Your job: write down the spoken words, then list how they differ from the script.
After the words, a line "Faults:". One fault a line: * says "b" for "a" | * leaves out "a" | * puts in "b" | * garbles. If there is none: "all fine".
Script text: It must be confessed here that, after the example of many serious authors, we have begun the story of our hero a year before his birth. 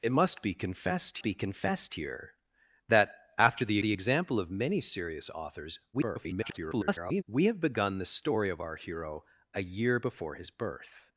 It must be confessed be confessed here that, after the the example of many serious authors, [garbled] we have begun the story of our hero a year before his birth.
Faults:
* puts in "be confessed"
* puts in "the"
* garbles